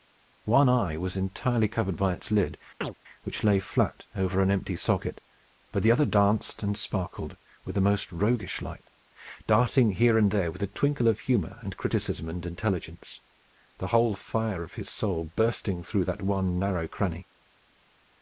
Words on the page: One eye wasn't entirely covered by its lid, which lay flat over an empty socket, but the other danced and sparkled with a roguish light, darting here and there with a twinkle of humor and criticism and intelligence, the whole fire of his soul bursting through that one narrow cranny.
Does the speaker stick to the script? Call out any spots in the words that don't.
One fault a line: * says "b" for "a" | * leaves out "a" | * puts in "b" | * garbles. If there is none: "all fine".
* says "was" for "wasn't"
* puts in "most"